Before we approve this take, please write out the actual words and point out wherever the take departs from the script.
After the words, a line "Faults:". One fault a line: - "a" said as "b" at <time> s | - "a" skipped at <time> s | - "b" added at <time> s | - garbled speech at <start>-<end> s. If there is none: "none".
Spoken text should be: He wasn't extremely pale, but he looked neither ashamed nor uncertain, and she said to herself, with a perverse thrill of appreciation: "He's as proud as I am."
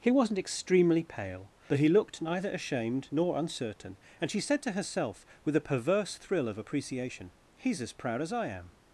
He wasn't extremely pale, but he looked neither ashamed nor uncertain, and she said to herself, with a perverse thrill of appreciation: "He's as proud as I am."
Faults:
none